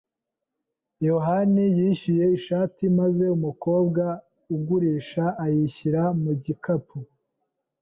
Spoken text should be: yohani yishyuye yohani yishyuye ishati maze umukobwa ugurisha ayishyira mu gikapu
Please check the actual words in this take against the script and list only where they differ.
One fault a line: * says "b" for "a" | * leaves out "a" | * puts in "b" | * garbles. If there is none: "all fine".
* leaves out "yohani yishyuye"